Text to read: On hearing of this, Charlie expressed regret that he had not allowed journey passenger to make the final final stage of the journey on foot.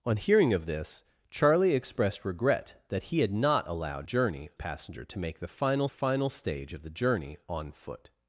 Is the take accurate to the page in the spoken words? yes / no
yes